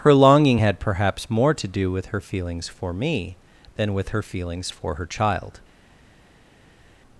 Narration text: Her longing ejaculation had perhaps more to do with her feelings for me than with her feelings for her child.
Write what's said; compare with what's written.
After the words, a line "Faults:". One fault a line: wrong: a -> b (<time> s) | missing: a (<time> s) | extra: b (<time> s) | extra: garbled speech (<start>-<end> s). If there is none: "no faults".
Her longing had perhaps more to do with her feelings for me than with her feelings for her child.
Faults:
missing: ejaculation (0.6 s)